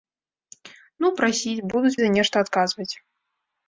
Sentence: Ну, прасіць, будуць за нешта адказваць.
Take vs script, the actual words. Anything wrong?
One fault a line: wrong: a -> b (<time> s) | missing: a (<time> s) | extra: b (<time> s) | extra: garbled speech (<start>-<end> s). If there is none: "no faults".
no faults